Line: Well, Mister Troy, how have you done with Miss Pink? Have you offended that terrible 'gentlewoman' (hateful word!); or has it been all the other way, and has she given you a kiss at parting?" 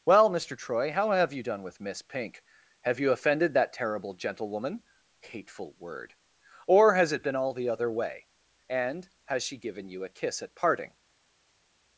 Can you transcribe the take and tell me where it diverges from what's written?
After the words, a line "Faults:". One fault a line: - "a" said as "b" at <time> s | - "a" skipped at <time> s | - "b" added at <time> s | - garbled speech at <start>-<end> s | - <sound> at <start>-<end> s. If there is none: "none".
Well, Mister Troy, how have you done with Miss Pink? Have you offended that terrible 'gentlewoman' (hateful word!); or has it been all the other way, and has she given you a kiss at parting?"
Faults:
none